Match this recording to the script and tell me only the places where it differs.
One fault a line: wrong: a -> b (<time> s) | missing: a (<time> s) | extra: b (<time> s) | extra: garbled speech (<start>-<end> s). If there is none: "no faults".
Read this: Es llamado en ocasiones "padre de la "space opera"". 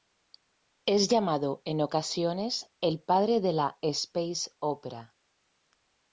extra: el (2.8 s)